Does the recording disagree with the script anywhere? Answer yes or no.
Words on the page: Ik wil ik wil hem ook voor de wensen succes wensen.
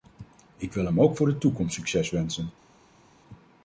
yes